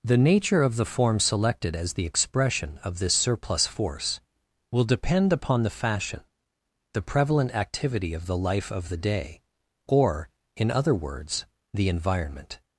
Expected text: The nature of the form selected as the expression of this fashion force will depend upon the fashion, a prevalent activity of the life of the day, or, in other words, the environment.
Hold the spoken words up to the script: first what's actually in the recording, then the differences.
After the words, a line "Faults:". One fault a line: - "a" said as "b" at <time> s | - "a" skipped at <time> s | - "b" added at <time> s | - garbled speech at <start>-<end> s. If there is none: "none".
The nature of the form selected as the expression of this surplus force will depend upon the fashion, the prevalent activity of the life of the day, or, in other words, the environment.
Faults:
- "fashion" said as "surplus" at 3.1 s
- "a" said as "the" at 6.9 s